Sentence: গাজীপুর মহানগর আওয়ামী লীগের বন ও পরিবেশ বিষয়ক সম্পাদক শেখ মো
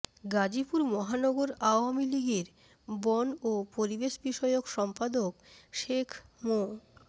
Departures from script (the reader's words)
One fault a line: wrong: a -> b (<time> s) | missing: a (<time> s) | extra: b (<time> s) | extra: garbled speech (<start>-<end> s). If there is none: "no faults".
no faults